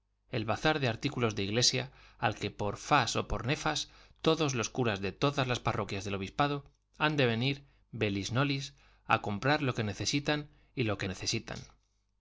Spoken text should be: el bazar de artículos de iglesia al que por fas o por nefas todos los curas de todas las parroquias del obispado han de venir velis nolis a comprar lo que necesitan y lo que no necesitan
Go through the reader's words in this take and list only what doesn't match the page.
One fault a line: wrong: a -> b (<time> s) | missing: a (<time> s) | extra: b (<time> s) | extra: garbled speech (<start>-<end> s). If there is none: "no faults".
missing: no (11.1 s)